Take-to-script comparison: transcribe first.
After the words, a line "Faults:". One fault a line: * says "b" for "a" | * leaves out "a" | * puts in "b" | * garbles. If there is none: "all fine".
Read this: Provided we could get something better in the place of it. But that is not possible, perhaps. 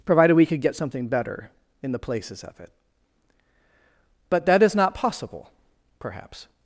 Provided we could get something better in the places of it. But that is not possible, perhaps.
Faults:
* says "places" for "place"